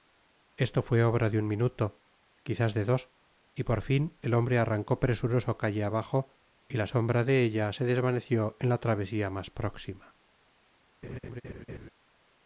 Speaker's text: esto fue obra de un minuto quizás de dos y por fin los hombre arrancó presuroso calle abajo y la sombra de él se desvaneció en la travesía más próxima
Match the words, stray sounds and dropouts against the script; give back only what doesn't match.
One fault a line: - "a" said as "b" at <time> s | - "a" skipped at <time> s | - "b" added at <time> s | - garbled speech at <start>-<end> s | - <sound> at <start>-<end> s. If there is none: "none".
- "los" said as "el" at 4.2 s
- "él" said as "ella" at 7.4 s
- laugh at 11.0-11.9 s